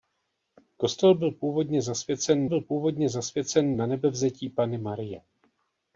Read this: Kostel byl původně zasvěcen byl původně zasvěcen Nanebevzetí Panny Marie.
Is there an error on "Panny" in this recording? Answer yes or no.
no